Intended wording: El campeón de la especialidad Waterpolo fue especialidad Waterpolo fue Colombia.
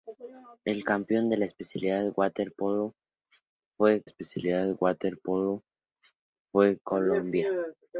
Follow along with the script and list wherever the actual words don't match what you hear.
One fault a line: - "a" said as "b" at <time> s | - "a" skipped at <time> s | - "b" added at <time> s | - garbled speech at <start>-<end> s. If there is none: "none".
none